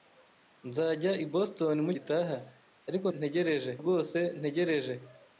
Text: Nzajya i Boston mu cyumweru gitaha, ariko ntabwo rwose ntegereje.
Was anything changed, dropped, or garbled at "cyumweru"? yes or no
yes